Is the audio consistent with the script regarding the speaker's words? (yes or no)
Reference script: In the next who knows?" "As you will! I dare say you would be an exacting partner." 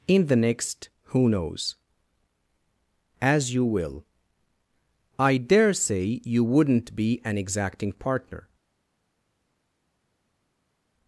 no